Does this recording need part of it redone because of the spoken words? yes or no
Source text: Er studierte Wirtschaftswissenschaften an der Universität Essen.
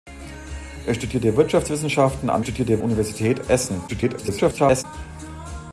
yes